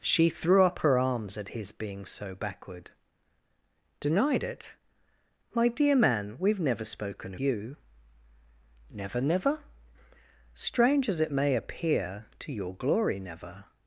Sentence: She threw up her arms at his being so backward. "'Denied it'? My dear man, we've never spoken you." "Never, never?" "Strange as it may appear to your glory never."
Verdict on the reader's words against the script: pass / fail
pass